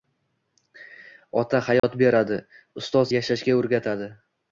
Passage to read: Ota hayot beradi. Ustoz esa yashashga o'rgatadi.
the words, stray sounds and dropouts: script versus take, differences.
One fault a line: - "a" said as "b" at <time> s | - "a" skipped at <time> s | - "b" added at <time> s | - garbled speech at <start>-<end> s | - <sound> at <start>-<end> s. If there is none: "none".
- dropout at 1.8-1.8 s
- "esa" skipped at 3.0 s